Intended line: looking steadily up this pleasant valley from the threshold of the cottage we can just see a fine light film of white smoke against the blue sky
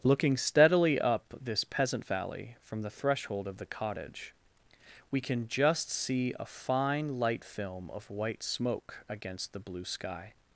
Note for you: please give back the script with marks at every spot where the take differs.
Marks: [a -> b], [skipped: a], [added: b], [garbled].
looking steadily up this [pleasant -> peasant] valley from the threshold of the cottage we can just see a fine light film of white smoke against the blue sky